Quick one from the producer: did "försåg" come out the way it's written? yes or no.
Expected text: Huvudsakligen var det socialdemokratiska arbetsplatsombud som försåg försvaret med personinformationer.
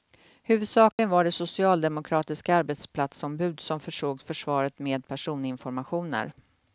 yes